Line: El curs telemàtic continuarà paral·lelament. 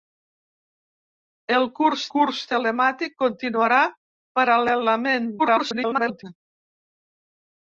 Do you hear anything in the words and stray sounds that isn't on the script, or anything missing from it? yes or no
yes